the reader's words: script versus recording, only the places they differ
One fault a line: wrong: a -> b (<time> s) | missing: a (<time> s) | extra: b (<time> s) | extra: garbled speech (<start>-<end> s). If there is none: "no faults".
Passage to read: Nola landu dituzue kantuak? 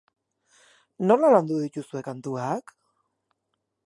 no faults